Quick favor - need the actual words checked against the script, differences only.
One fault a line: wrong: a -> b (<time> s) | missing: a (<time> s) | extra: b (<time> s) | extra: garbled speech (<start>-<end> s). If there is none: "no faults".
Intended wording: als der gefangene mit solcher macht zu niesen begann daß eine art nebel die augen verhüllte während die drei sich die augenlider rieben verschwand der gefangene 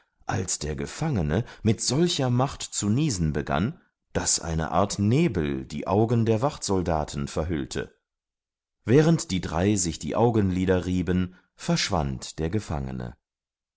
extra: der wachtsoldaten (6.2 s)